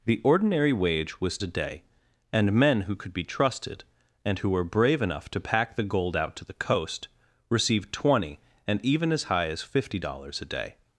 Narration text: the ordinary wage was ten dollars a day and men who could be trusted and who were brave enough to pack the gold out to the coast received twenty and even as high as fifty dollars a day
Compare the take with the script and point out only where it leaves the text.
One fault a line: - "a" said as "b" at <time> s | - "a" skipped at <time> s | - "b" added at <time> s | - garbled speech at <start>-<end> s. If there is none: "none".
- "ten dollars" skipped at 1.4 s